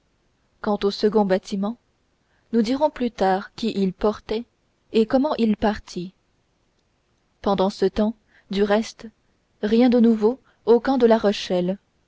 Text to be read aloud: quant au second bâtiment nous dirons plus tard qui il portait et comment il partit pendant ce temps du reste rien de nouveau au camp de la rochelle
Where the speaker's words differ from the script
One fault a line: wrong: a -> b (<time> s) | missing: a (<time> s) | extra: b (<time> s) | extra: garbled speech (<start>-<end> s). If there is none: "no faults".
no faults